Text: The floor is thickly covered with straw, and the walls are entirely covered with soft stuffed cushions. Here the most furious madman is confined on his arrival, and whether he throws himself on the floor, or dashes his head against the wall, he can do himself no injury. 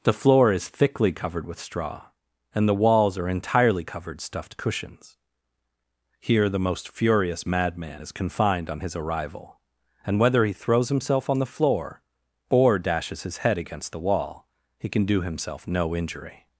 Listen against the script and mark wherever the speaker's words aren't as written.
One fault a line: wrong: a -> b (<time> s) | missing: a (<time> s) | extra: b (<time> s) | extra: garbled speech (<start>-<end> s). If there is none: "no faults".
missing: with soft (4.2 s)